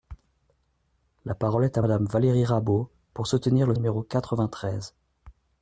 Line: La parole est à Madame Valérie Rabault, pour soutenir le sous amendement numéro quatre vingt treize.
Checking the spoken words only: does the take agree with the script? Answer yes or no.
no